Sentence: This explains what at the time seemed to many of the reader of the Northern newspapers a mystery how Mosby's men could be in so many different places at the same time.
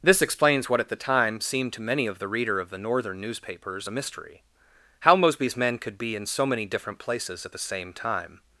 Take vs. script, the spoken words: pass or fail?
pass